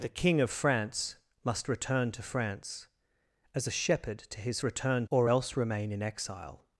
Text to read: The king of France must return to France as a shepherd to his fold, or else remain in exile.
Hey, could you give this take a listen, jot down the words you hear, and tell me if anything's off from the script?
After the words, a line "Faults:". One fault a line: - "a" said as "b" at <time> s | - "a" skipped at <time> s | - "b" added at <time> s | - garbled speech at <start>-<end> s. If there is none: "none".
The king of France must return to France as a shepherd to his return, or else remain in exile.
Faults:
- "fold" said as "return" at 4.6 s